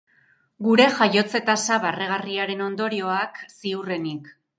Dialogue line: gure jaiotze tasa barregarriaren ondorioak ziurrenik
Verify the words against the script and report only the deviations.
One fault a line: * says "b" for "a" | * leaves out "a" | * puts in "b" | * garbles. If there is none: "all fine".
all fine